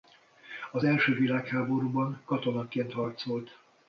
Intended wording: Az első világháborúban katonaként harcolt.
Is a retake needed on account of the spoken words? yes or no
no